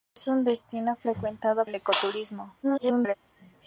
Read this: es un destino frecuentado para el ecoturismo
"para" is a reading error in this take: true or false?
true